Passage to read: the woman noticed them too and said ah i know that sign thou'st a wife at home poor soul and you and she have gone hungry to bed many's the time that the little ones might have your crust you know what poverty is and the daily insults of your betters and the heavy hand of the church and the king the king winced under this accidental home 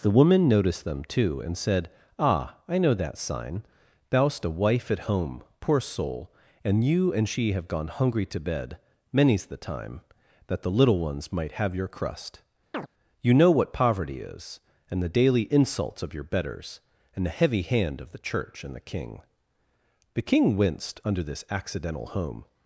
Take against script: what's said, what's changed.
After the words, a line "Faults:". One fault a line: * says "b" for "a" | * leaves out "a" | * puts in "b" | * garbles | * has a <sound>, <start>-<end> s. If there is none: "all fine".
the woman noticed them too and said ah i know that sign thou'st a wife at home poor soul and you and she have gone hungry to bed many's the time that the little ones might have your crust you know what poverty is and the daily insults of your betters and the heavy hand of the church and the king the king winced under this accidental home
Faults:
* has a chirp, 12.7-12.9 s